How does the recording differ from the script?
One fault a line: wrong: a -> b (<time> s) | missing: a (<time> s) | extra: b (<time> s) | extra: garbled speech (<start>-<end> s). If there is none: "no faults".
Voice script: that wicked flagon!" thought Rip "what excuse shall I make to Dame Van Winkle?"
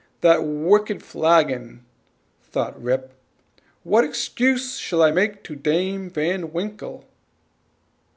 no faults